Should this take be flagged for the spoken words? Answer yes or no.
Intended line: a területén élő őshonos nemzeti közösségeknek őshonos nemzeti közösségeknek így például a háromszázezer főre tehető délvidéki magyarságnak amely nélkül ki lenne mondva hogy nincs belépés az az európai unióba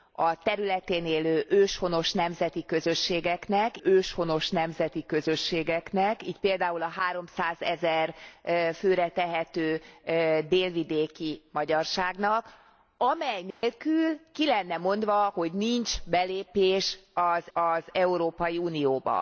no